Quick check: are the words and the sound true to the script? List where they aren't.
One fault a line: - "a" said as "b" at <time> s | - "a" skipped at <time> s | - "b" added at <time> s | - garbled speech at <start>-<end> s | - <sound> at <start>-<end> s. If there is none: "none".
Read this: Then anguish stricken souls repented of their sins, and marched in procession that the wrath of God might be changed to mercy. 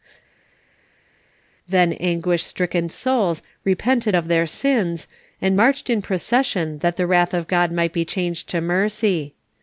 none